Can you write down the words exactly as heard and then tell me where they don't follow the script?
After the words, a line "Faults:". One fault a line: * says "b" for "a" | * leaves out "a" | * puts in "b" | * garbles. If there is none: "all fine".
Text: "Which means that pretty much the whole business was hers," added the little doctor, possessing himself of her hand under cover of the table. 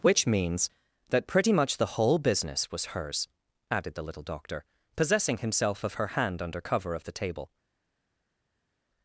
"Which means that pretty much the whole business was hers," added the little doctor, possessing himself of her hand under cover of the table.
Faults:
all fine